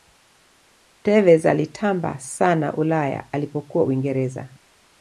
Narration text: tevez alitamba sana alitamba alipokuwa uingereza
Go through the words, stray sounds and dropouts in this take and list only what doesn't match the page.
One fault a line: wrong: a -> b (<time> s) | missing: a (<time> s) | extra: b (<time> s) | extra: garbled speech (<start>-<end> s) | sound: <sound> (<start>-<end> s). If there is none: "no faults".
wrong: alitamba -> ulaya (2.8 s)